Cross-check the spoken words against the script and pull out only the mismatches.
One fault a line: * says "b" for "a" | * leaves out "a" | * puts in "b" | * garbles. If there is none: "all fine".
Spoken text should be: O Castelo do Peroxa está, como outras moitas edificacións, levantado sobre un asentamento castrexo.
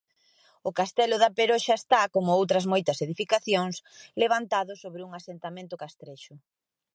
* says "da" for "do"